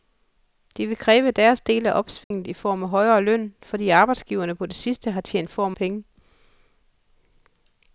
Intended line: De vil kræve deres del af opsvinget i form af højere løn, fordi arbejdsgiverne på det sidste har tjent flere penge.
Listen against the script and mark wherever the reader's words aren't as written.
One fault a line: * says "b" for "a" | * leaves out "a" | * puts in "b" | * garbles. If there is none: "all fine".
* says "form" for "flere"